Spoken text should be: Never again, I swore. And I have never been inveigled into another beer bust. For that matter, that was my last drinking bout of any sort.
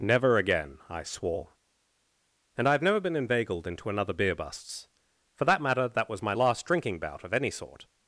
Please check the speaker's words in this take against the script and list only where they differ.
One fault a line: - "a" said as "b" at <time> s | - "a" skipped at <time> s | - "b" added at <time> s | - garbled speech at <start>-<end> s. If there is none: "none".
- "bust" said as "busts" at 4.3 s